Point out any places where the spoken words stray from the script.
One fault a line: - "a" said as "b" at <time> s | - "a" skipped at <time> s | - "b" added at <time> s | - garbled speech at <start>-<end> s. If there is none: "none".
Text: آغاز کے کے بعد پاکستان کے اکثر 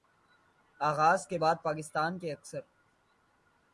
- "کے" skipped at 1.4 s